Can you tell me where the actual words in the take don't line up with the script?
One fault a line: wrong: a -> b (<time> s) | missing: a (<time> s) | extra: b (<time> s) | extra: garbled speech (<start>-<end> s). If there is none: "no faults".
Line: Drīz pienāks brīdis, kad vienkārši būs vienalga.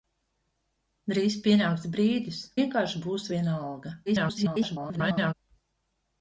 missing: kad (2.4 s)
extra: garbled speech (4.1-5.3 s)